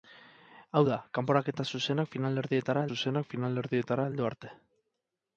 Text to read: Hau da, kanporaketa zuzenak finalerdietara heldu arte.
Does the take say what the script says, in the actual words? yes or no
no